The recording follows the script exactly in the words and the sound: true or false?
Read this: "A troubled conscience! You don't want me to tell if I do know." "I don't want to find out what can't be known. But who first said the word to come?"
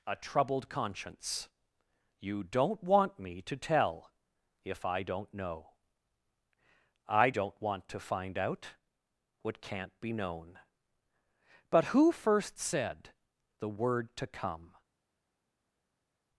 false